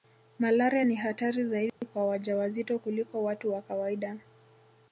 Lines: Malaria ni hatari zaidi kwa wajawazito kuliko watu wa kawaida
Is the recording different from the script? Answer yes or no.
no